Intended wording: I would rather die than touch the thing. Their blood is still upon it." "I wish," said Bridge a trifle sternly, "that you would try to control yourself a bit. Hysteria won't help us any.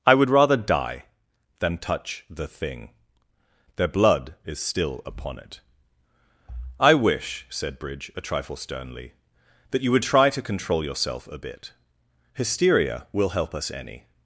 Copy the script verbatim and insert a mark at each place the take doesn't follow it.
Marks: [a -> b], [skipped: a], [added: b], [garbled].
I would rather die than touch the thing. Their blood is still upon it." "I wish," said Bridge a trifle sternly, "that you would try to control yourself a bit. Hysteria [won't -> will] help us any.